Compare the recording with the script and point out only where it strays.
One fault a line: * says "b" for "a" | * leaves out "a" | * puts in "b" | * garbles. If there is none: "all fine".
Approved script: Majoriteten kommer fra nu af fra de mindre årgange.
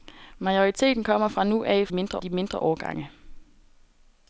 * says "mindre" for "fra"